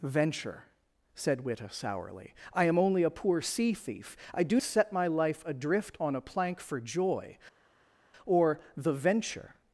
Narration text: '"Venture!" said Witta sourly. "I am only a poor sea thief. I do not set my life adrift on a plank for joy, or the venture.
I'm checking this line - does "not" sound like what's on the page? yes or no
no